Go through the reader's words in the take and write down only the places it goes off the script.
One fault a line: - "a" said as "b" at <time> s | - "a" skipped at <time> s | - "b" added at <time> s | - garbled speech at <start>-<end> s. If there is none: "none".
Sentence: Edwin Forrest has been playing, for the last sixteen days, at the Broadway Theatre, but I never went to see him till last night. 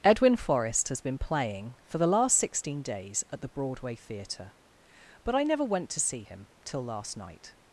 none